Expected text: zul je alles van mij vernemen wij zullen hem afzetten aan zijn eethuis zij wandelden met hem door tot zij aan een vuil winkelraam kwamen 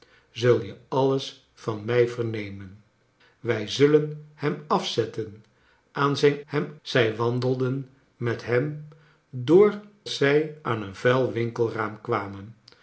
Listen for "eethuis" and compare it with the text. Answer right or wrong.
wrong